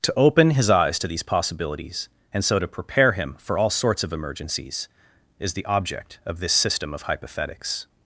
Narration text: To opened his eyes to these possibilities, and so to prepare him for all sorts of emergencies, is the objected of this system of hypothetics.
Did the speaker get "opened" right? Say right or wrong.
wrong